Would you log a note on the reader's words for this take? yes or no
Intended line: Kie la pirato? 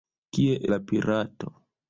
no